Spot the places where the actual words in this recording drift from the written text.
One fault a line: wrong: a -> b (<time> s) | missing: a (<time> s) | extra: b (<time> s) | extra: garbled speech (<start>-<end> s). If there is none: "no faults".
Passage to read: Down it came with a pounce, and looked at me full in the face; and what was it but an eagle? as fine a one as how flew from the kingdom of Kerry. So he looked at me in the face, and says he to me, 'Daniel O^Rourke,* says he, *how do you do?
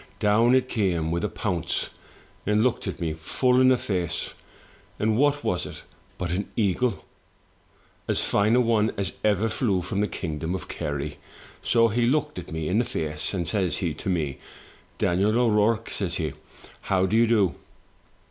wrong: how -> ever (9.2 s)